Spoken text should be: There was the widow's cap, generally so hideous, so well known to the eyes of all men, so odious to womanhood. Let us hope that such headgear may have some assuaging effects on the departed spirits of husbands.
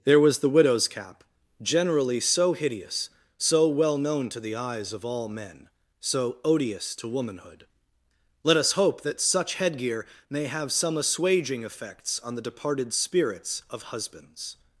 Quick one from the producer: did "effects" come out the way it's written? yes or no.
yes